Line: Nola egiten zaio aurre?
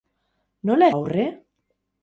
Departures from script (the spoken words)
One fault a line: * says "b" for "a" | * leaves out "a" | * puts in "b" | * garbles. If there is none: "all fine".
* leaves out "egiten zaio"